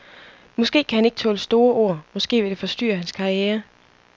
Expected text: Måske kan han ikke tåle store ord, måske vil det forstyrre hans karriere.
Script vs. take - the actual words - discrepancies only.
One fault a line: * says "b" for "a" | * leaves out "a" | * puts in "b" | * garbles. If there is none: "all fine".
all fine